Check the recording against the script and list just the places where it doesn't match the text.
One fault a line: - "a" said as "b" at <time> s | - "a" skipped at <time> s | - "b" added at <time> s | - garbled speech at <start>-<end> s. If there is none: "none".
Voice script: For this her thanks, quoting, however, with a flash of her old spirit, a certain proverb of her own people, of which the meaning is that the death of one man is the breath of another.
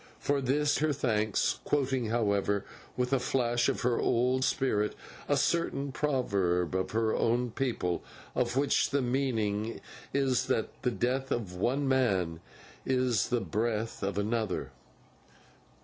none